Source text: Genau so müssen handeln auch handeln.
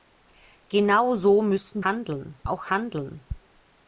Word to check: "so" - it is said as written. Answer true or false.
true